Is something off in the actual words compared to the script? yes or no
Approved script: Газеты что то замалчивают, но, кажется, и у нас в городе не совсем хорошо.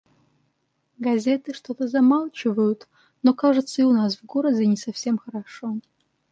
no